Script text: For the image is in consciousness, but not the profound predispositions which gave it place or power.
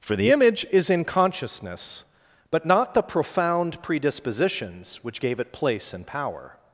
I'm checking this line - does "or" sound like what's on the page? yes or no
no